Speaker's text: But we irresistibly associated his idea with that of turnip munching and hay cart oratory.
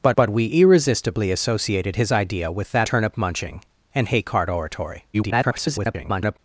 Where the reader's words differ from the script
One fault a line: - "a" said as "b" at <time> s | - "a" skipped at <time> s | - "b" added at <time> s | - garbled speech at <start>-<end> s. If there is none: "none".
- "but" added at 0.1 s
- "of" skipped at 2.9 s
- garbled speech at 5.1-6.4 s